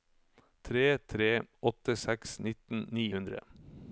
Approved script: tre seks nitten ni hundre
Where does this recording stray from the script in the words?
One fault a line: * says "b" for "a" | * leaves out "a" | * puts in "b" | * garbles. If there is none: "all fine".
* puts in "tre åtte"